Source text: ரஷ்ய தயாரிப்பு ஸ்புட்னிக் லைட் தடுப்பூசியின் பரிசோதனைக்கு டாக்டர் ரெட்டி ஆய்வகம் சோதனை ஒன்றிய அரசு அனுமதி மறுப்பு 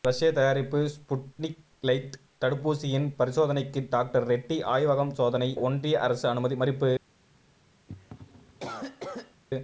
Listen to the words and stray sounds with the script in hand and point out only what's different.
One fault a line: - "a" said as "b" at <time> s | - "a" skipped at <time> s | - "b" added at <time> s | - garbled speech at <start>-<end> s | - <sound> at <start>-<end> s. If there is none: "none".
- cough at 7.9-9.4 s